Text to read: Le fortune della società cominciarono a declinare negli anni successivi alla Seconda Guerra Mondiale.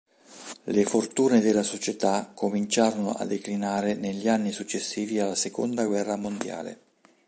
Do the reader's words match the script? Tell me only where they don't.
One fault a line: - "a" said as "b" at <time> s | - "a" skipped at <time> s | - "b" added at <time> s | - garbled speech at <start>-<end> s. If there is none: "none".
none